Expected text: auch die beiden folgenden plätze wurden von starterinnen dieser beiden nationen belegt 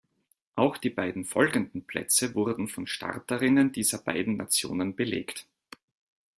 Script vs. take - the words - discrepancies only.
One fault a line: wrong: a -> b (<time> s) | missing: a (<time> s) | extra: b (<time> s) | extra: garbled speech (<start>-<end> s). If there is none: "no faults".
no faults